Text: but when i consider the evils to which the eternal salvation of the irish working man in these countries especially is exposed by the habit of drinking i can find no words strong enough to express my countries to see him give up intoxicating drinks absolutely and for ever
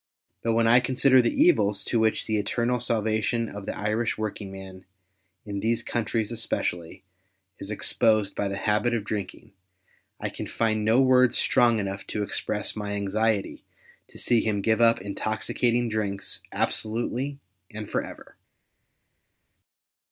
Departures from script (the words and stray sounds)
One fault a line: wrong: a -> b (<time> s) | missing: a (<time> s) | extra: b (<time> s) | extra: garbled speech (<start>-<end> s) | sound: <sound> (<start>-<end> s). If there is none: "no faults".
wrong: countries -> anxiety (12.9 s)